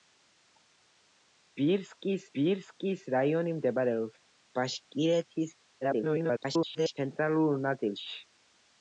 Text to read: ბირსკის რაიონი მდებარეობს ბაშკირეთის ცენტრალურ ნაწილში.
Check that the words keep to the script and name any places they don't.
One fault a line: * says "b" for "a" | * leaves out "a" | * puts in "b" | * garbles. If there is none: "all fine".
* puts in "ბირსკის"
* garbles